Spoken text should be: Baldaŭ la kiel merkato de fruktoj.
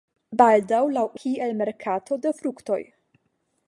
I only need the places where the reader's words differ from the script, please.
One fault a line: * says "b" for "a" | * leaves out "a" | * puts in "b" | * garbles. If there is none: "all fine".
all fine